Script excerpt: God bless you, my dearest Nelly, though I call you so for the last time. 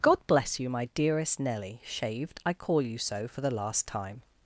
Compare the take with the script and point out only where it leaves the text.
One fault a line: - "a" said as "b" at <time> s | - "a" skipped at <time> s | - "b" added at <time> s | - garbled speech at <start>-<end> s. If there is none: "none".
- "though" said as "shaved" at 1.8 s